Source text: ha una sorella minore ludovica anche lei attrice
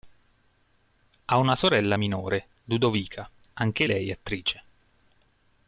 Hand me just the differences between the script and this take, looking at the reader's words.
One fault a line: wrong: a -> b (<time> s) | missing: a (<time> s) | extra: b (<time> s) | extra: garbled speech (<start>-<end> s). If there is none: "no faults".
no faults